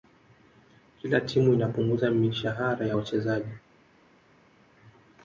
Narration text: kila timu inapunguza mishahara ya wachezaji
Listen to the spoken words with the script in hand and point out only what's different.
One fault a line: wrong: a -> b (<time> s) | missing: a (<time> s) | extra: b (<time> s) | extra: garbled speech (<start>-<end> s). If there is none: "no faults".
no faults